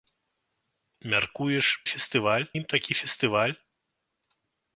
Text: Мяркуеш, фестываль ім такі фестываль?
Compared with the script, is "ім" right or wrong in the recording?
right